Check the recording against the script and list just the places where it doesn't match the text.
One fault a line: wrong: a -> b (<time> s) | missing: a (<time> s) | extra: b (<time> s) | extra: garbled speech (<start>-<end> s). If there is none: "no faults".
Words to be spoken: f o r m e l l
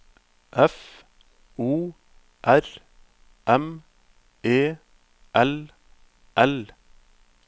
no faults